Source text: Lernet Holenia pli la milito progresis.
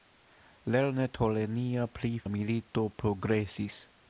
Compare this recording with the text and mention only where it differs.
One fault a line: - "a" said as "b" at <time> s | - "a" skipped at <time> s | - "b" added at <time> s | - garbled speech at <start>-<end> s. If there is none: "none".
none